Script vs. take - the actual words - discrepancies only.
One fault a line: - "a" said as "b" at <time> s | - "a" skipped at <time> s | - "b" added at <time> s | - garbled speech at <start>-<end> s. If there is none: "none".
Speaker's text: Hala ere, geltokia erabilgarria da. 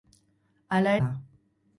- "ere geltokia erabilgarria" skipped at 0.9 s